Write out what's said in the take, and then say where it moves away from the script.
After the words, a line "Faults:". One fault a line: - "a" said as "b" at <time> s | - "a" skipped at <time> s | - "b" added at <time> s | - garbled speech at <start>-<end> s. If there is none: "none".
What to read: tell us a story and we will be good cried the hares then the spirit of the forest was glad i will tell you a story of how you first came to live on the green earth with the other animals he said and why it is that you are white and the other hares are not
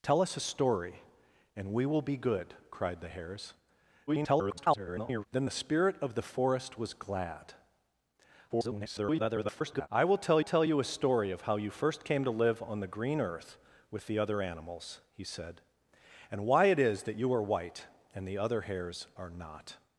tell us a story and we will be good cried the hares [garbled] then the spirit of the forest was glad [garbled] i will tell tell you a story of how you first came to live on the green earth with the other animals he said and why it is that you are white and the other hares are not
Faults:
- garbled speech at 4.1-5.3 s
- garbled speech at 8.5-9.9 s
- "tell" added at 10.4 s